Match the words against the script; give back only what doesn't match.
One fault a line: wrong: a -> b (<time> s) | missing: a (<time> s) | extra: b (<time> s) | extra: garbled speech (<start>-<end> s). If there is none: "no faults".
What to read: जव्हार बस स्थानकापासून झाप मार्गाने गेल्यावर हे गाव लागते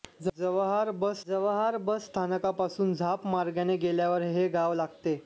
extra: जव्हार बस (1.3 s)